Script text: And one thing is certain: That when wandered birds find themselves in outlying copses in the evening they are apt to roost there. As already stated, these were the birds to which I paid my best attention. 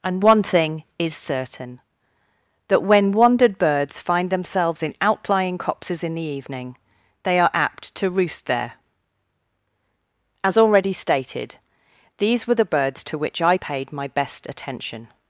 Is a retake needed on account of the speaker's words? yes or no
no